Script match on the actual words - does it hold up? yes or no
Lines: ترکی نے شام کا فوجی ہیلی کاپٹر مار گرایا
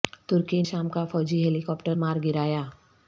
no